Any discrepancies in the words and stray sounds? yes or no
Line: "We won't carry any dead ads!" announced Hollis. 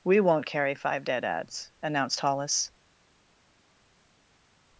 yes